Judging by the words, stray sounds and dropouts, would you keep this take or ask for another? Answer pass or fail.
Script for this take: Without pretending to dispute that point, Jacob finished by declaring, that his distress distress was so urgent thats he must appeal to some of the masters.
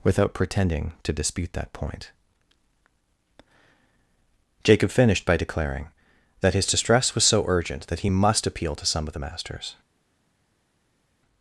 fail